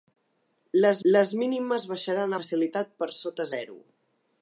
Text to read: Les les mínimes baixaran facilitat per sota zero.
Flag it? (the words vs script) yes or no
no